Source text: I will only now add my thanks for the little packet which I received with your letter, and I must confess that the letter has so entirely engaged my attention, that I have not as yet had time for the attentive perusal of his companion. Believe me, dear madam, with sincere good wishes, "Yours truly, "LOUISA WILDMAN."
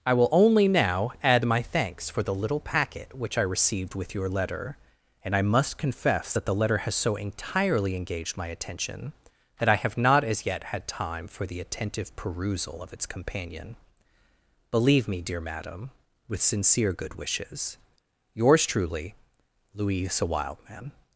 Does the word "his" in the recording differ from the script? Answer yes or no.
yes